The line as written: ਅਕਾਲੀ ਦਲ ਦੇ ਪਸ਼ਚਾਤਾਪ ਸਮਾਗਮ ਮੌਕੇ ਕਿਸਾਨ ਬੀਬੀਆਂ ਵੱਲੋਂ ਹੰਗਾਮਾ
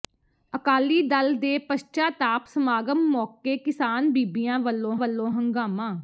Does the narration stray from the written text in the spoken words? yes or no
yes